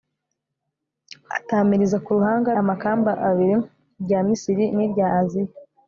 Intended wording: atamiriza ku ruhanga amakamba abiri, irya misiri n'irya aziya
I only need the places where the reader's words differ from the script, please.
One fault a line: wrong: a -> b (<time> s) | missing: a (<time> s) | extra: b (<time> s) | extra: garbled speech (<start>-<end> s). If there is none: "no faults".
no faults